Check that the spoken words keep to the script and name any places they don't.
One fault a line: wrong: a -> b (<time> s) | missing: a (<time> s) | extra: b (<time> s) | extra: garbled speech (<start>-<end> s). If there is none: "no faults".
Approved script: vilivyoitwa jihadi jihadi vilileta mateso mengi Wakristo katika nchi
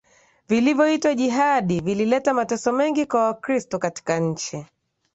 missing: jihadi (1.8 s)
extra: kwa (3.0 s)